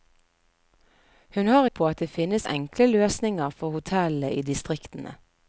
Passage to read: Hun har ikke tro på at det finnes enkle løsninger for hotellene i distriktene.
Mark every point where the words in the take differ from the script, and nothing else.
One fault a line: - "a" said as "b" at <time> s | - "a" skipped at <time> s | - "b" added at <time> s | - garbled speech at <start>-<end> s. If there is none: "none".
- "ikke tro" skipped at 1.6 s